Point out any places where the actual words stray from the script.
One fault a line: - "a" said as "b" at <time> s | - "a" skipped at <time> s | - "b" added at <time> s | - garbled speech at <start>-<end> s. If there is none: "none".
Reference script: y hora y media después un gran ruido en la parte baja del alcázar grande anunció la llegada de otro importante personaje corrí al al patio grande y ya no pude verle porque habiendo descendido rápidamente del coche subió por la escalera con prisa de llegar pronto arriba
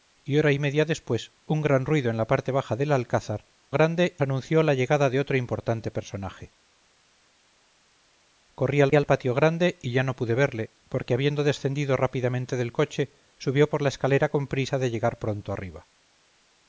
none